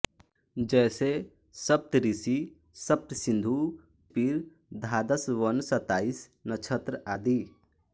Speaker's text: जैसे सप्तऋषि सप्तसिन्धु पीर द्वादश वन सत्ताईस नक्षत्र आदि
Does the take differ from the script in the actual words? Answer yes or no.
no